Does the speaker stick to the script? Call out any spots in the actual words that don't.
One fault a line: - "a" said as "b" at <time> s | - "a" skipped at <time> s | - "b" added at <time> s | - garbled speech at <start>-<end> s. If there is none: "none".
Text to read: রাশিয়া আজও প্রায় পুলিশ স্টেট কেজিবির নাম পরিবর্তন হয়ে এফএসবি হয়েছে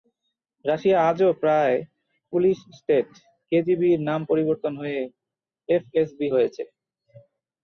none